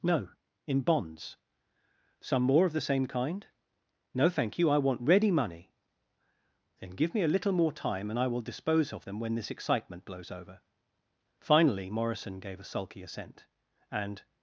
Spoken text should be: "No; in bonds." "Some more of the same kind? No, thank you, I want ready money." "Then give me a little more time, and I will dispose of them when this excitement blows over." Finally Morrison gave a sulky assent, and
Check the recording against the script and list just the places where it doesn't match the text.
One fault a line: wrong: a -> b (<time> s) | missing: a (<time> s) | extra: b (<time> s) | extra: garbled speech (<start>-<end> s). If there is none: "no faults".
no faults